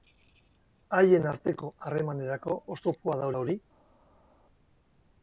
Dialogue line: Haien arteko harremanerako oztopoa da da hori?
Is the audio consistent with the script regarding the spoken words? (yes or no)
yes